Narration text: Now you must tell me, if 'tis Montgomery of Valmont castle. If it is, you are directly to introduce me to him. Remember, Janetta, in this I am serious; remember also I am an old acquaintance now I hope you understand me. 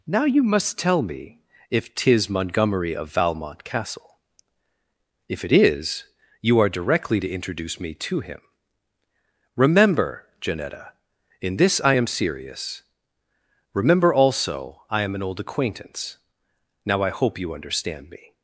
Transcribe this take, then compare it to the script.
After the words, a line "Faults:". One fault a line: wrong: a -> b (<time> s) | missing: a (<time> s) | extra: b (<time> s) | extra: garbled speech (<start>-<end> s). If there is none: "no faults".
Now you must tell me, if 'tis Montgomery of Valmont castle. If it is, you are directly to introduce me to him. Remember, Janetta, in this I am serious; remember also I am an old acquaintance now I hope you understand me.
Faults:
no faults